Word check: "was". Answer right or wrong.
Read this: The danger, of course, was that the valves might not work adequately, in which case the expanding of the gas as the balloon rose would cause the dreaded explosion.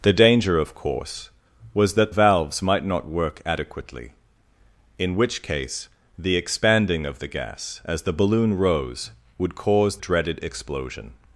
right